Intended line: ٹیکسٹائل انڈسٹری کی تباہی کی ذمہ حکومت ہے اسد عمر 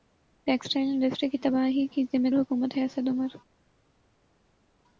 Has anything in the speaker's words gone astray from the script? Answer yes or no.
no